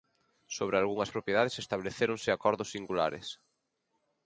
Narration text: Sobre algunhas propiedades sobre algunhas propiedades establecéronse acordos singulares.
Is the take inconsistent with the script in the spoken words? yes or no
yes